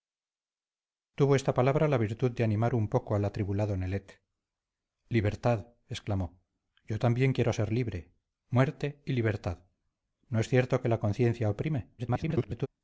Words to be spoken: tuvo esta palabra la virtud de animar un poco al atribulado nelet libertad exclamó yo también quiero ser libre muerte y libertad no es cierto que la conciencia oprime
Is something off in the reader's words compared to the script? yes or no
yes